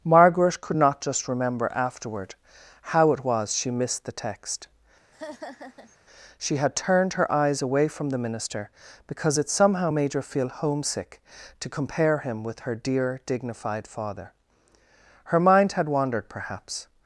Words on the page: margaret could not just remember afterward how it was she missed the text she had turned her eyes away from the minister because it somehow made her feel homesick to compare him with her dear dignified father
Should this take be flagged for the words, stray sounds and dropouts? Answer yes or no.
yes